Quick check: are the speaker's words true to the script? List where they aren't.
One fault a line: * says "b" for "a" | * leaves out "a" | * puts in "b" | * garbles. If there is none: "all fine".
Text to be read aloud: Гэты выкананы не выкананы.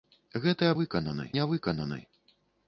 all fine